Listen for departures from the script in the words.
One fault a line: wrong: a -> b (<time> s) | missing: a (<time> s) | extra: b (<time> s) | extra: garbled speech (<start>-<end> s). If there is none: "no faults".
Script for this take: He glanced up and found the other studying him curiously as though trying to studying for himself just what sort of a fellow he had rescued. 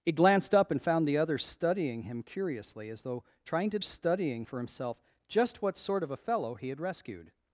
no faults